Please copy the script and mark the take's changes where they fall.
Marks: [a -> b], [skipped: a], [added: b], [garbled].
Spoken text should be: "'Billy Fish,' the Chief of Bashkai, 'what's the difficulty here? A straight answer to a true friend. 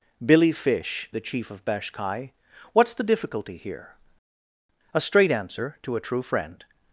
"'Billy Fish,' the Chief of Bashkai, 'what's the difficulty here? A straight answer to a true friend.